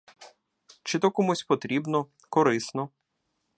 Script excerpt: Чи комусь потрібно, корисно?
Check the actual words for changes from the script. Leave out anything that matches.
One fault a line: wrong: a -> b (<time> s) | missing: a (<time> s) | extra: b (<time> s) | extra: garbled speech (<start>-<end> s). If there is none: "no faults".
extra: то (1.0 s)